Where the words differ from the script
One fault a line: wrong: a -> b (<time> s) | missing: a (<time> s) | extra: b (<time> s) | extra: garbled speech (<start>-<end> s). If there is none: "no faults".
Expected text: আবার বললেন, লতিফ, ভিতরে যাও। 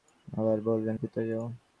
missing: লতিফ (0.9 s)